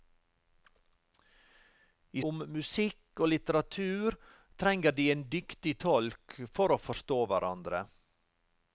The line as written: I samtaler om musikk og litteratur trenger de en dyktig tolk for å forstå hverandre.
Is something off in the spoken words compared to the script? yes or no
yes